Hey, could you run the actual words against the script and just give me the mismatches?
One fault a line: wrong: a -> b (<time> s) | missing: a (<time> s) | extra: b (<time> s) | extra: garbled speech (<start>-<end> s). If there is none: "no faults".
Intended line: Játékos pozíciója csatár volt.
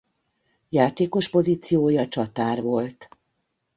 no faults